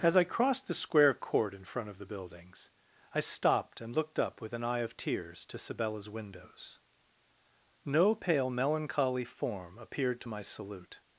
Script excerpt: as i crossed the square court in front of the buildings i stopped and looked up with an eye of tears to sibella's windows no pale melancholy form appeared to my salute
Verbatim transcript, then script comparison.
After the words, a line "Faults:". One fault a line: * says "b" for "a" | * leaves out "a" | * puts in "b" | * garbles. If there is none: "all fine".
as i crossed the square court in front of the buildings i stopped and looked up with an eye of tears to sibella's windows no pale melancholy form appeared to my salute
Faults:
all fine